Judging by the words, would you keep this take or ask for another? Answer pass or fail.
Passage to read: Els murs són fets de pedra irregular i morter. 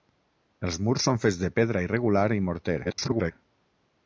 fail